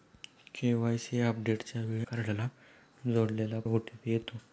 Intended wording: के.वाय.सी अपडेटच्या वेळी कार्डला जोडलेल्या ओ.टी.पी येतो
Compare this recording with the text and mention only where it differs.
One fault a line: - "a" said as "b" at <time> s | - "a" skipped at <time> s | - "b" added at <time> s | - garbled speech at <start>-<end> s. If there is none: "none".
none